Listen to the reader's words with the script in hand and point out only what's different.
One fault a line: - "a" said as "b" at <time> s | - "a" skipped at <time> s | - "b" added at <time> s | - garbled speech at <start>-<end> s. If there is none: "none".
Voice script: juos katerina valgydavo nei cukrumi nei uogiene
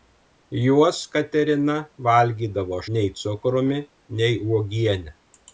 none